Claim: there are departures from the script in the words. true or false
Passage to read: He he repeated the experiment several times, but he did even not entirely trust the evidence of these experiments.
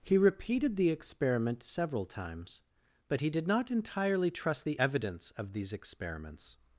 true